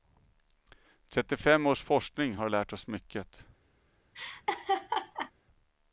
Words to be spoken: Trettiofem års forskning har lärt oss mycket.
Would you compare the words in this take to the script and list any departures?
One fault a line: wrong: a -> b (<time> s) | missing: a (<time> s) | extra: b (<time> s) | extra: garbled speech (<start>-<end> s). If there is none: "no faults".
no faults